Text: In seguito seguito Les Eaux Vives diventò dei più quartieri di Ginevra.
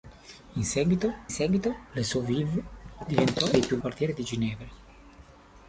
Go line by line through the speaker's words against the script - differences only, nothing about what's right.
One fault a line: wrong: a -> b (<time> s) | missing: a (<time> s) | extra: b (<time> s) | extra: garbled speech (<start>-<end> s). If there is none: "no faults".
no faults